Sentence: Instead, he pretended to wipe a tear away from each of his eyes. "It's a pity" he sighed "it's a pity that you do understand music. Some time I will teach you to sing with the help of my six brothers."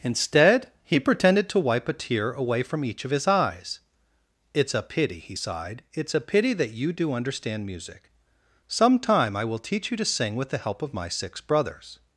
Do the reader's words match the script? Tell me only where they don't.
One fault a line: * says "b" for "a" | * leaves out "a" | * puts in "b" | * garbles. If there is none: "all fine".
all fine